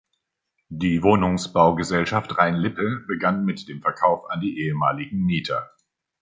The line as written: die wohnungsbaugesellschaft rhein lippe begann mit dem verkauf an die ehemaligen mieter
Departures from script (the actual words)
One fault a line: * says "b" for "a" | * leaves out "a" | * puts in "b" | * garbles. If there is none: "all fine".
all fine